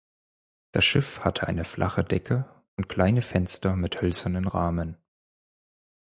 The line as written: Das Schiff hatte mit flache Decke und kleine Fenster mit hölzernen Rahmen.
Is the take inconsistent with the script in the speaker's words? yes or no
yes